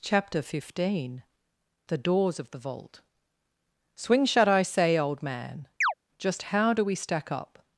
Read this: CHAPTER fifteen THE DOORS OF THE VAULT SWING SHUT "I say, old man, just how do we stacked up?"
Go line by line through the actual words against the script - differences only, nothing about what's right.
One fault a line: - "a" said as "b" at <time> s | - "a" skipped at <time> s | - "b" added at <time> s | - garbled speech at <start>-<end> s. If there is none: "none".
- "stacked" said as "stack" at 6.9 s